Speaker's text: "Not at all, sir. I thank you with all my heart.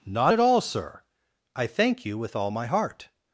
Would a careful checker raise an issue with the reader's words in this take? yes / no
no